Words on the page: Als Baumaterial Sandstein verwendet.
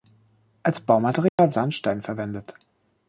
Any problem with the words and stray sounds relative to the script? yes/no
yes